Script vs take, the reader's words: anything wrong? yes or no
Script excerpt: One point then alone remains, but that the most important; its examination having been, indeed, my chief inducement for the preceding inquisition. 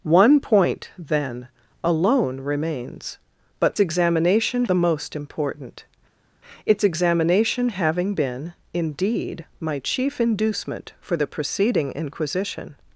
yes